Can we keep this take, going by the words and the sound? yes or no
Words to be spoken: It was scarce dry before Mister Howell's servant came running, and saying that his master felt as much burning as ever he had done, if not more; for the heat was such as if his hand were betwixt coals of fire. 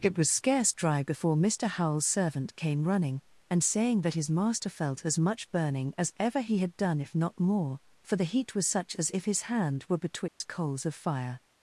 no